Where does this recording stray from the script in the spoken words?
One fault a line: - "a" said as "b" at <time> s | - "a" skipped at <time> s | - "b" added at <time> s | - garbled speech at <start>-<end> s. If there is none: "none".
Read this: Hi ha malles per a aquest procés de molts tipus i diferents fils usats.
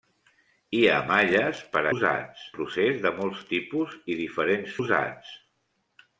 - "aquest" said as "usats" at 1.9 s
- "fils" skipped at 4.8 s